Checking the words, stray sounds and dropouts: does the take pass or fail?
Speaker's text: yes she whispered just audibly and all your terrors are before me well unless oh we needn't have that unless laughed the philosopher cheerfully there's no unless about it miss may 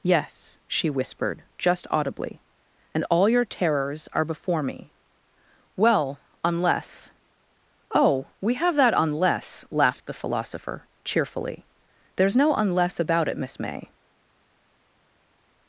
fail